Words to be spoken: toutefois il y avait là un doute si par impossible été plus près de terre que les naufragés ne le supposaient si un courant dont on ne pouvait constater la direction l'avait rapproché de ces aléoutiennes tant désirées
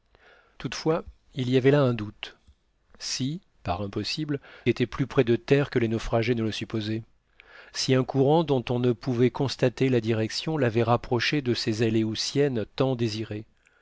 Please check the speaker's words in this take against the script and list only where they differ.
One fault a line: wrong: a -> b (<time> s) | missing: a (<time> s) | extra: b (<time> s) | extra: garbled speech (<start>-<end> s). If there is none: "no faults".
no faults